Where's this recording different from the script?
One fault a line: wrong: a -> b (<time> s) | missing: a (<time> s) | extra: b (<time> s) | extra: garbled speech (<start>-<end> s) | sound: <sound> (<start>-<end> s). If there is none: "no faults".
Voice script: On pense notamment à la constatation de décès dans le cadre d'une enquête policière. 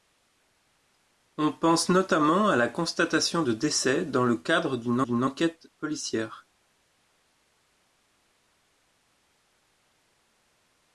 extra: d'une (5.0 s)